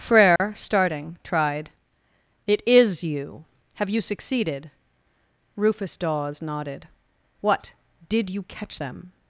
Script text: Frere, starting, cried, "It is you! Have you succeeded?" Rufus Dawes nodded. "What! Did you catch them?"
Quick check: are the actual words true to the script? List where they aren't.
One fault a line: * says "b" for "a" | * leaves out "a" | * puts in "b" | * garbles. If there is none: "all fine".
* says "tried" for "cried"